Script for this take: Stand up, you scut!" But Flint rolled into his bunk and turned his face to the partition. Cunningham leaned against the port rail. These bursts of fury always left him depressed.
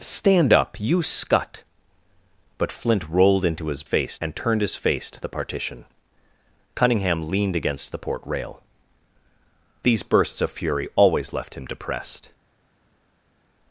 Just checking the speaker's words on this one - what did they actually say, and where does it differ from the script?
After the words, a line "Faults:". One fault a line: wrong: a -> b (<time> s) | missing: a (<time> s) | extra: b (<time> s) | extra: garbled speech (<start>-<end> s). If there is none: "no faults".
Stand up, you scut!" But Flint rolled into his face and turned his face to the partition. Cunningham leaned against the port rail. These bursts of fury always left him depressed.
Faults:
wrong: bunk -> face (3.8 s)